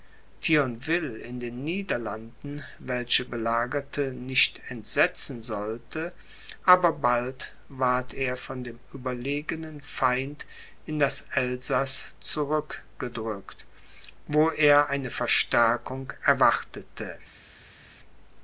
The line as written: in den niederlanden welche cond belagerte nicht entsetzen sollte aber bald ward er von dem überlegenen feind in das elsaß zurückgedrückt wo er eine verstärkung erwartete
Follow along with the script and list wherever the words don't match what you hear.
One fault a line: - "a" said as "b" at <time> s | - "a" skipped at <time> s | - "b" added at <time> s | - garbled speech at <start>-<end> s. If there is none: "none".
- "cond" skipped at 3.2 s